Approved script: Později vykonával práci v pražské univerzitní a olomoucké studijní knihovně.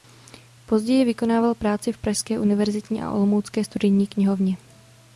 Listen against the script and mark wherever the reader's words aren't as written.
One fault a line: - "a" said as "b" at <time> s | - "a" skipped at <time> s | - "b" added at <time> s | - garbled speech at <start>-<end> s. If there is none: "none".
none